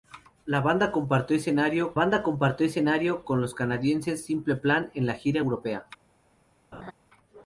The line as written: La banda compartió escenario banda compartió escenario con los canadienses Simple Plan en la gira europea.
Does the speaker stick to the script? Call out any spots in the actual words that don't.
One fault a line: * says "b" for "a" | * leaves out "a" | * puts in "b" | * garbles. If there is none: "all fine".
all fine